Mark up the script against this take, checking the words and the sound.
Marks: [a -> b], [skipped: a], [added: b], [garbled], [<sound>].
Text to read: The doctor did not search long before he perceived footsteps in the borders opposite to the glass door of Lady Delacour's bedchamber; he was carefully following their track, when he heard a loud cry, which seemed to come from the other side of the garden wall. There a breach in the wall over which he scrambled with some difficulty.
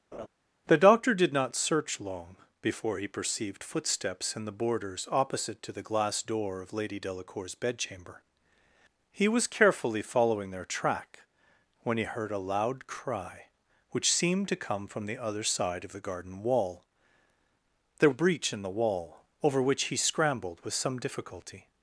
[laugh] The doctor did not search long before he perceived footsteps in the borders opposite to the glass door of Lady Delacour's bedchamber; he was carefully following their track, when he heard a loud cry, which seemed to come from the other side of the garden wall. There a breach in the wall over which he scrambled with some difficulty.